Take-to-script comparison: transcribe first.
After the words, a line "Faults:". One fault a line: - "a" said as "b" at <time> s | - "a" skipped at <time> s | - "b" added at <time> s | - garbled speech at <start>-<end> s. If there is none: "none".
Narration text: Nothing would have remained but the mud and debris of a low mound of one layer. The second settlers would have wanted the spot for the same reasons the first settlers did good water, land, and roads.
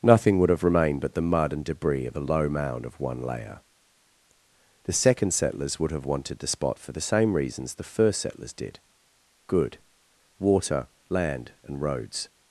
Nothing would have remained but the mud and debris of a low mound of one layer. The second settlers would have wanted the spot for the same reasons the first settlers did good water, land, and roads.
Faults:
none